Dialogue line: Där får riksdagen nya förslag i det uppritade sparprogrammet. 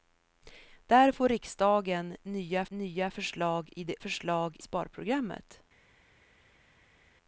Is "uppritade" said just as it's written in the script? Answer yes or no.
no